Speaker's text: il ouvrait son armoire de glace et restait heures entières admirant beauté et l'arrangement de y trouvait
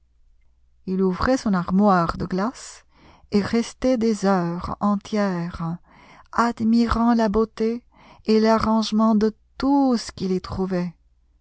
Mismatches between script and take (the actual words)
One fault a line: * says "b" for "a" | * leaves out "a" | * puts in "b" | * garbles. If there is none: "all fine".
* puts in "des"
* puts in "la"
* puts in "tout ce qu'il"